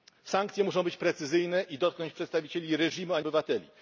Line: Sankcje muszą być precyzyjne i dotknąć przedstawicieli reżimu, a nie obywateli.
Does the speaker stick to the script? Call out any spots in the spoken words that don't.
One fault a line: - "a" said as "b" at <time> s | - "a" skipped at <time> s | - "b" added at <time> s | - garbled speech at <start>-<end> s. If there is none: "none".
- "nie" skipped at 3.2 s